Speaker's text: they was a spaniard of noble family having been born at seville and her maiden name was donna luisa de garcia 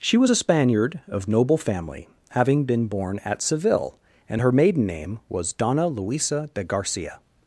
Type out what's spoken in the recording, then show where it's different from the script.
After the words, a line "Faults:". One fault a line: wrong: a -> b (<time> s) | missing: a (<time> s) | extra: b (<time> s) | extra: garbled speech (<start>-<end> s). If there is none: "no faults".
she was a spaniard of noble family having been born at seville and her maiden name was donna luisa de garcia
Faults:
wrong: they -> she (0.0 s)